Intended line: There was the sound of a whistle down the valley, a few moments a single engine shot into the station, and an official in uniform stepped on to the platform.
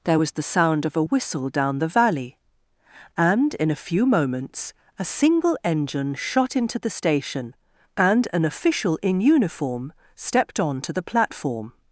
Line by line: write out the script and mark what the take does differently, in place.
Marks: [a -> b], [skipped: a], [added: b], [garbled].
There was the sound of a whistle down the valley, [added: and in] a few moments a single engine shot into the station, and an official in uniform stepped on to the platform.